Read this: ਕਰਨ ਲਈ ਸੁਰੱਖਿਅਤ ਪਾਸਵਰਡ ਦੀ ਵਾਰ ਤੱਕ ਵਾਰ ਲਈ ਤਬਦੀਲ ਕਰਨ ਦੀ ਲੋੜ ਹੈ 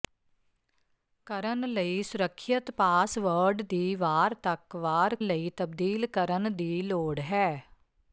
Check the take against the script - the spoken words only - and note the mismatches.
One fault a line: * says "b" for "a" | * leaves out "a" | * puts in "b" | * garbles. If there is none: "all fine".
all fine